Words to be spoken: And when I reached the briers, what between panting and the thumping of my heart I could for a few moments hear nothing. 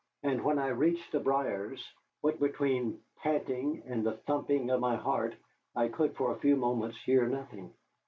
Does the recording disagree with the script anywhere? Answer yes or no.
no